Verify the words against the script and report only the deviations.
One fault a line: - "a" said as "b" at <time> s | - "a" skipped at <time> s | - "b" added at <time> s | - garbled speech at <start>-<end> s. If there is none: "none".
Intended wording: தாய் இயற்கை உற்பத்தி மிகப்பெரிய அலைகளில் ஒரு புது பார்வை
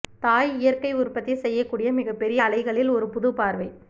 - "செய்யக்கூடிய" added at 1.4 s